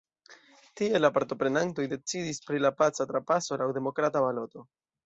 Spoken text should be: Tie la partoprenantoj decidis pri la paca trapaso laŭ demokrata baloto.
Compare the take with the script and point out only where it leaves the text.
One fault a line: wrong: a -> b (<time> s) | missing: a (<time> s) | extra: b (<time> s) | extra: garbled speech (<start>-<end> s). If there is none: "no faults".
no faults